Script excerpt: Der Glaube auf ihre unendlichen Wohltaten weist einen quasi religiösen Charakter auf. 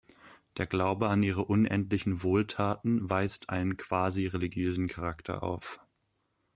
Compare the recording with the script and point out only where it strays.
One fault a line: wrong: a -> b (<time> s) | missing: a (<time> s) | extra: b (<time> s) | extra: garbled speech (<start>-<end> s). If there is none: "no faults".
wrong: auf -> an (1.1 s)